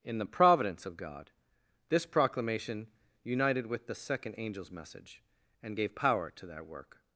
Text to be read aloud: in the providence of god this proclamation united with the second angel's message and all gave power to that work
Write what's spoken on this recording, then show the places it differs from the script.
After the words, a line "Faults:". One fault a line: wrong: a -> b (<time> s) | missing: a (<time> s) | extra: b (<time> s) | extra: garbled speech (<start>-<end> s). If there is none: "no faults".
in the providence of god this proclamation united with the second angel's message and gave power to that work
Faults:
missing: all (5.8 s)